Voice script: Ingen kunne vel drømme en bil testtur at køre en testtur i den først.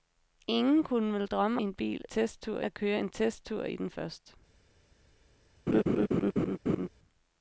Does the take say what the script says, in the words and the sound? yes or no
no